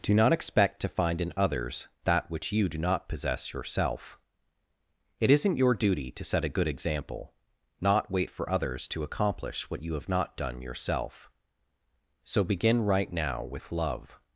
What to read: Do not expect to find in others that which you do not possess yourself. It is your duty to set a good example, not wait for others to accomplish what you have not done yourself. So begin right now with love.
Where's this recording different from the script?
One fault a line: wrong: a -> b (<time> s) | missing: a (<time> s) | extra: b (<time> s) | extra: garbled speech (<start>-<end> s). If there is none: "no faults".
wrong: is -> isn't (5.3 s)